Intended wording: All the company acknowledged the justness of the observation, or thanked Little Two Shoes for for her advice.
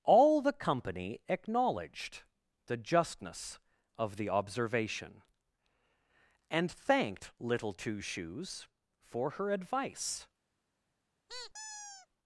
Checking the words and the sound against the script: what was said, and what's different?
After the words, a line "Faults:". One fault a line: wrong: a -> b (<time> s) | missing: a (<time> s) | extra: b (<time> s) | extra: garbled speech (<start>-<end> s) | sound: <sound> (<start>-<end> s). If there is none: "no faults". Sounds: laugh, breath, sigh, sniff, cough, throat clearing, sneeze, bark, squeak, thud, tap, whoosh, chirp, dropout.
All the company acknowledged the justness of the observation, and thanked Little Two Shoes for her advice.
Faults:
wrong: or -> and (6.5 s)
missing: for (9.3 s)
sound: squeak (11.3-12.1 s)